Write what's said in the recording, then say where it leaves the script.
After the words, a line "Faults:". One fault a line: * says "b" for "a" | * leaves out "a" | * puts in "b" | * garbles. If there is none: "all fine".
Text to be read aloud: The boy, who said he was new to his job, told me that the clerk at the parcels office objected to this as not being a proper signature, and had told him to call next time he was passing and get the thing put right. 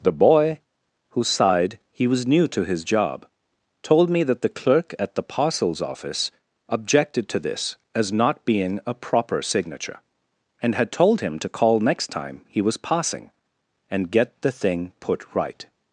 The boy, who sighed he was new to his job, told me that the clerk at the parcels office objected to this as not being a proper signature, and had told him to call next time he was passing and get the thing put right.
Faults:
* says "sighed" for "said"